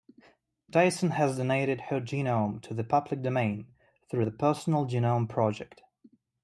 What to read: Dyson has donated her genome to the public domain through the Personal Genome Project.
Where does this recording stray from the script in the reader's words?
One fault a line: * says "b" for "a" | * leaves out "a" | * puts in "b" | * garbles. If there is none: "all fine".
all fine